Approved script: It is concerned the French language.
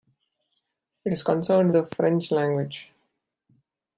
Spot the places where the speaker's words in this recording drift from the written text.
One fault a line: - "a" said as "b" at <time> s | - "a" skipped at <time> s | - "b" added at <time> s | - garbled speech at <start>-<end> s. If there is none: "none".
none